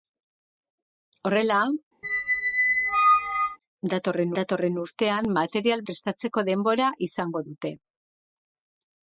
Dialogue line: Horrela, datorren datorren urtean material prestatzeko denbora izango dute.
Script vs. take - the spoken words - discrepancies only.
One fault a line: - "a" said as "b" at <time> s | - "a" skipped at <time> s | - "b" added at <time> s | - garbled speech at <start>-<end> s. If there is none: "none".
none